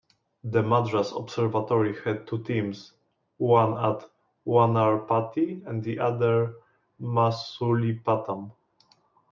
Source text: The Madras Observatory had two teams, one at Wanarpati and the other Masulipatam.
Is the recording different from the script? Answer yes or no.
no